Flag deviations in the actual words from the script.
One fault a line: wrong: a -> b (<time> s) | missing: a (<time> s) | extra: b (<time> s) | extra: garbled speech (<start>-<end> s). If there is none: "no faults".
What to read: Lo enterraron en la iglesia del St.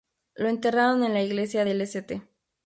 no faults